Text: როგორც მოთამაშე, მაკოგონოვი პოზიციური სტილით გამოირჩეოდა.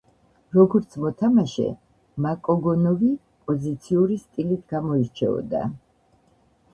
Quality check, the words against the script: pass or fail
pass